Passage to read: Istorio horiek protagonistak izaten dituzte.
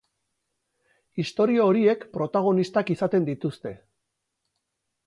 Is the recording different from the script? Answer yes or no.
no